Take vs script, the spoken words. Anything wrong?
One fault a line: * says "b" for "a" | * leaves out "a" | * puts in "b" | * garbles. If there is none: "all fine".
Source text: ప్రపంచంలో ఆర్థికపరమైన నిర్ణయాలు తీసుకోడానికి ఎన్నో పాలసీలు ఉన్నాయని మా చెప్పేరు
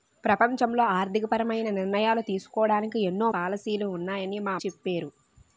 all fine